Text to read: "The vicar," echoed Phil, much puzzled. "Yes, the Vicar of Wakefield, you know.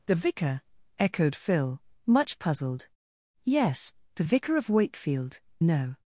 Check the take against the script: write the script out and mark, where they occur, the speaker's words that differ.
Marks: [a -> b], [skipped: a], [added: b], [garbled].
"The vicar," echoed Phil, much puzzled. "Yes, the Vicar of Wakefield, [skipped: you] know.